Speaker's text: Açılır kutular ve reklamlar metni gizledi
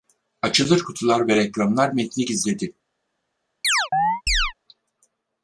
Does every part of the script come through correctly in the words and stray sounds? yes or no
no